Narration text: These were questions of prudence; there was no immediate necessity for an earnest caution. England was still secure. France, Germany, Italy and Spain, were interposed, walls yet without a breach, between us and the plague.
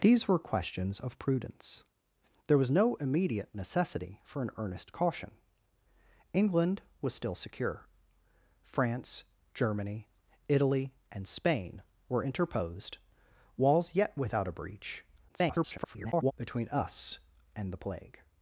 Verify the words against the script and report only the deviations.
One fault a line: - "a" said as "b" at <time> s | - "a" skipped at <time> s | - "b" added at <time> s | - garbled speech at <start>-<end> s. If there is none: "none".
- garbled speech at 15.3-16.3 s